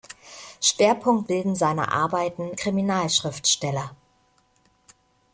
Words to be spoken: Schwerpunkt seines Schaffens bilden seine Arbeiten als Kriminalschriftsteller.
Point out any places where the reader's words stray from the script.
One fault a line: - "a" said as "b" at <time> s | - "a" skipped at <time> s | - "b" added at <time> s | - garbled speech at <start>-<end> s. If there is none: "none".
- "seines Schaffens" skipped at 1.3 s
- "als" skipped at 2.5 s